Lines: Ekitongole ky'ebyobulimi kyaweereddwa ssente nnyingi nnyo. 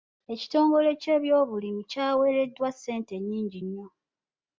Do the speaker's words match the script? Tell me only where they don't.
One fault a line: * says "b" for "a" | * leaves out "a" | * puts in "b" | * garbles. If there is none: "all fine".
all fine